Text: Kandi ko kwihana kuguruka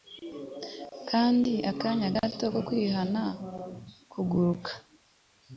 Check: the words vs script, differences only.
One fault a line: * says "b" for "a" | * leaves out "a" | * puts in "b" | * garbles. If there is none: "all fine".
* puts in "akanya gato"